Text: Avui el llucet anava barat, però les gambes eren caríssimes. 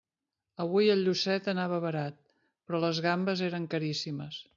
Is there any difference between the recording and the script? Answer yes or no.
no